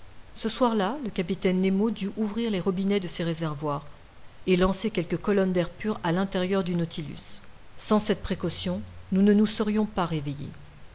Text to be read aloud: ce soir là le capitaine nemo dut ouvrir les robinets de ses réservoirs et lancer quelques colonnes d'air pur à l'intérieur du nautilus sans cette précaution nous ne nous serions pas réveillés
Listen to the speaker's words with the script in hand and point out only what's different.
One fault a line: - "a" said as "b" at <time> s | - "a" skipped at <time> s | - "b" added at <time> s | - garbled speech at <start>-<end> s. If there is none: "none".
none